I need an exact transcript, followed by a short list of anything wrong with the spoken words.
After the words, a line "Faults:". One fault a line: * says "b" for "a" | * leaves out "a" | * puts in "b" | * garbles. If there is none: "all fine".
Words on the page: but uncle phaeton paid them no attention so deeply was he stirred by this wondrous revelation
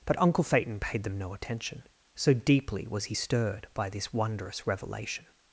but uncle phaeton paid them no attention so deeply was he stirred by this wondrous revelation
Faults:
all fine